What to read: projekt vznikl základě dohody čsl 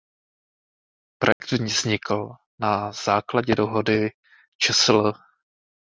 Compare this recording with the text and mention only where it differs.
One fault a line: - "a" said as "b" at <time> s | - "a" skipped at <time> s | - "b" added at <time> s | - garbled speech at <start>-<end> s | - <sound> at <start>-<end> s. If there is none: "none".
- dropout at 1.3-1.4 s
- "na" added at 2.6 s